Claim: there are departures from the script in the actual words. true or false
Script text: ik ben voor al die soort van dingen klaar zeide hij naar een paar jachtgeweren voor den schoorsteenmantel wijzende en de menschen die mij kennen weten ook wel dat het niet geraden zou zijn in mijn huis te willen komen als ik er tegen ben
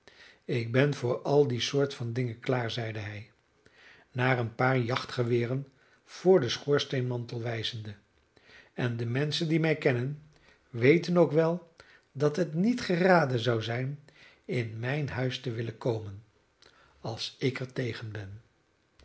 false